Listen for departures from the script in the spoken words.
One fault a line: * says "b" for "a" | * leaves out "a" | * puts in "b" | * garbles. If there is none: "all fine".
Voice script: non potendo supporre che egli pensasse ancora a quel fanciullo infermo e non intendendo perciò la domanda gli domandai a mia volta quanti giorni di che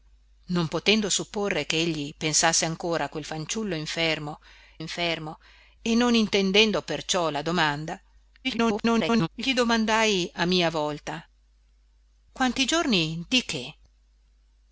* puts in "infermo"
* garbles